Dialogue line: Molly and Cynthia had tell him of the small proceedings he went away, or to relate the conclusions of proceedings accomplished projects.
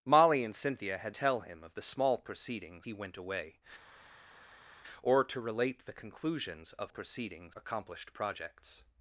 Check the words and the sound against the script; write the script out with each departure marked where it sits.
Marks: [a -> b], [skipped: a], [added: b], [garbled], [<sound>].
Molly and Cynthia had tell him of the small proceedings he went away, or to relate the conclusions of proceedings accomplished projects.